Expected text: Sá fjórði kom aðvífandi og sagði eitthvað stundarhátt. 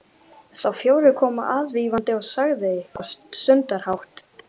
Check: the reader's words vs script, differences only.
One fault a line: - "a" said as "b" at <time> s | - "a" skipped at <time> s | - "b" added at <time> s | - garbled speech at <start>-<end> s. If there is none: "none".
none